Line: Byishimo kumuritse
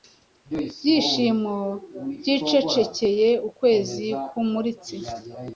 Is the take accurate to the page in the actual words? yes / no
no